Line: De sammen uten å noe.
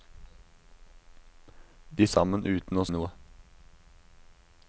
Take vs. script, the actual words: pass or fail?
pass